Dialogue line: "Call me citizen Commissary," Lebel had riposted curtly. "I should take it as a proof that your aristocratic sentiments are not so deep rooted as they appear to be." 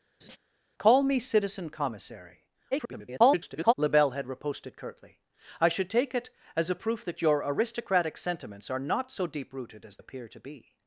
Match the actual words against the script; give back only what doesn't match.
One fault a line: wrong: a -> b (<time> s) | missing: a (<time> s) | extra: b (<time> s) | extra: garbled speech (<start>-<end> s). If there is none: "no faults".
extra: garbled speech (2.7-3.7 s)
missing: they (10.0 s)